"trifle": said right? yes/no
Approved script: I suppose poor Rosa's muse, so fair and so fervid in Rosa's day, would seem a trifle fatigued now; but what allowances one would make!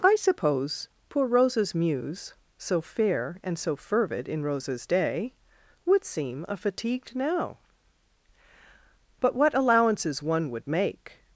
no